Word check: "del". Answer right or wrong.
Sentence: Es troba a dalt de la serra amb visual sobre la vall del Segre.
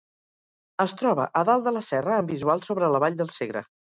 right